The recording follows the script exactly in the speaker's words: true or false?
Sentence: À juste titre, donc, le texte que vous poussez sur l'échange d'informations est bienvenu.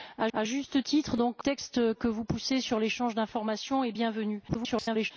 false